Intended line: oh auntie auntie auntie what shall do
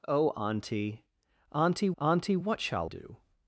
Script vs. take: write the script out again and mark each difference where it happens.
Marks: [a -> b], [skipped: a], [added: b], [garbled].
oh auntie auntie auntie what shall do